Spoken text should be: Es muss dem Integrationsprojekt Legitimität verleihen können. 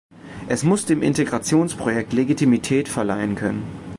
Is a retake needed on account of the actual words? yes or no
no